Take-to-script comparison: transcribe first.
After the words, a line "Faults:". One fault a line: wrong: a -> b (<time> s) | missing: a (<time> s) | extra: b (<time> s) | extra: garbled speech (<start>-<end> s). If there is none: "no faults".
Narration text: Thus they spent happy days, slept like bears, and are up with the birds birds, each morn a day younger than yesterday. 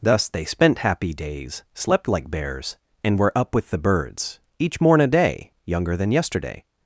Thus they spent happy days, slept like bears, and were up with the birds, each morn a day younger than yesterday.
Faults:
wrong: are -> were (3.2 s)
missing: birds (4.4 s)